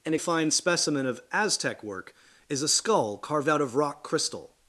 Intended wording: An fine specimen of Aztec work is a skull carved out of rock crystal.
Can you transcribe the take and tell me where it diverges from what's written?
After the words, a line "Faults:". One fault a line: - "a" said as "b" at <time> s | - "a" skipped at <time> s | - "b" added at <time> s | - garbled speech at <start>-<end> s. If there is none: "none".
An fine specimen of Aztec work is a skull carved out of rock crystal.
Faults:
none